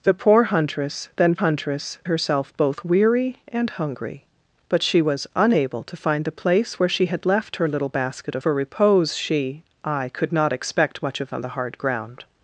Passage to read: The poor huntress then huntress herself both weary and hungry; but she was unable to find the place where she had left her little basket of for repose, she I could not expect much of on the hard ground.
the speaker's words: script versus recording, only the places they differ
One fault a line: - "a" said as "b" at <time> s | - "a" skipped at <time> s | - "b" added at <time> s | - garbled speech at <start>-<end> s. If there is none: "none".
none